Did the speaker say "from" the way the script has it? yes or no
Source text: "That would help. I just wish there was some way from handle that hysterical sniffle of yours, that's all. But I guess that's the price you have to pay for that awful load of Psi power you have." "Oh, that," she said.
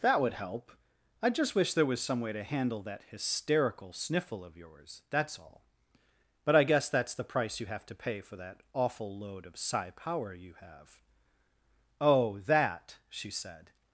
no